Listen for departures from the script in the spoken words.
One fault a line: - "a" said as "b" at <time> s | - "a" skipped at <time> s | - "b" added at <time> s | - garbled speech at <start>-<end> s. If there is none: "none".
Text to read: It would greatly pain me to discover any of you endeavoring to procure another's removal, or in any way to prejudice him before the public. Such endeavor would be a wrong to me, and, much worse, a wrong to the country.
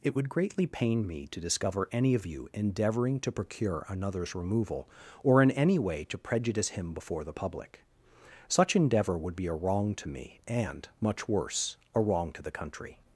none